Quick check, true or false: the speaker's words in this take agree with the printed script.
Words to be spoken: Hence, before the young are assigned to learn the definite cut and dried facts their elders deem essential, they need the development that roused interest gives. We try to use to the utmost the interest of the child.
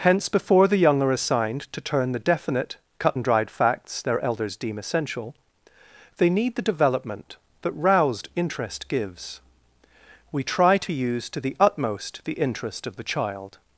false